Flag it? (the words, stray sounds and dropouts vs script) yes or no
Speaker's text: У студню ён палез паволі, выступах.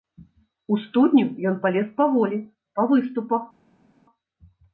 yes